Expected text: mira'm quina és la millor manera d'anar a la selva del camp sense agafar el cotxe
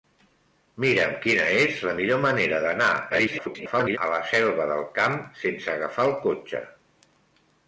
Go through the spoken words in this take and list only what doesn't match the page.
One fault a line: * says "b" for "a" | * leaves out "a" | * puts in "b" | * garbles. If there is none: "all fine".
* garbles